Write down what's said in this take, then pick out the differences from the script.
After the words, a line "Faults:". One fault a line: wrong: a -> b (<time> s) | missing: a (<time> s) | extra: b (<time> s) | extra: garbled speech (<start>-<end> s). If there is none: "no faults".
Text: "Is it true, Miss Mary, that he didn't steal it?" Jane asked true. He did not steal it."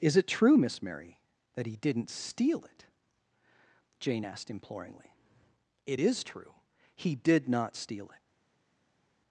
"Is it true, Miss Mary, that he didn't steal it?" Jane asked imploringly. "It is true. He did not steal it."
Faults:
extra: imploringly It is (4.5 s)